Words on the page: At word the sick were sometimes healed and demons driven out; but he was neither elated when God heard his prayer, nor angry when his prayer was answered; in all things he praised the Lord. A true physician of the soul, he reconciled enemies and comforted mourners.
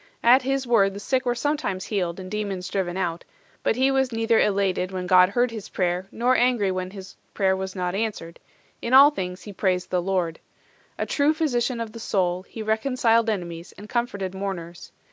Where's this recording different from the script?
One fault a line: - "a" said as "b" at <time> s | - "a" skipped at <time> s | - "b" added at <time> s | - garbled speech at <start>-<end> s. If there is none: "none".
- "his" added at 0.4 s
- "not" added at 7.7 s